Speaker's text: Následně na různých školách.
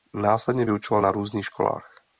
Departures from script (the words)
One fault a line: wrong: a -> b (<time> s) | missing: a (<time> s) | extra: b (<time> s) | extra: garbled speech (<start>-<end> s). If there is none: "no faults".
extra: vyučoval (0.6 s)